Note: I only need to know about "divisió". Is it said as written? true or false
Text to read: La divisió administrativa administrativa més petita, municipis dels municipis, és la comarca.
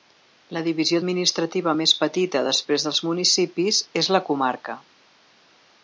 true